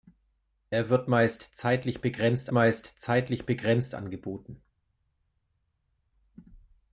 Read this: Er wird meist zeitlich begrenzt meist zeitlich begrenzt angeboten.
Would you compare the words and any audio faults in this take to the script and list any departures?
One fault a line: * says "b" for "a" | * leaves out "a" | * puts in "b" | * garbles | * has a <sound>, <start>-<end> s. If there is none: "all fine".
all fine